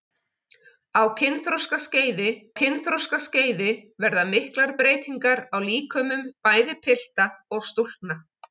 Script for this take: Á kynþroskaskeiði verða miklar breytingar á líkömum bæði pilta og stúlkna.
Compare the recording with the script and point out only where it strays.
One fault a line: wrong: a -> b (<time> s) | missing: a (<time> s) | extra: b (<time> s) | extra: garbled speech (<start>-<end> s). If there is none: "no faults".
extra: kynþroskaskeiði (2.6 s)